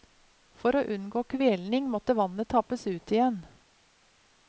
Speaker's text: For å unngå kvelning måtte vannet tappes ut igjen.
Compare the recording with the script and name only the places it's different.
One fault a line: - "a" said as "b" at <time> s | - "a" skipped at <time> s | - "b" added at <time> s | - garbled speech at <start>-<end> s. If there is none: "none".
none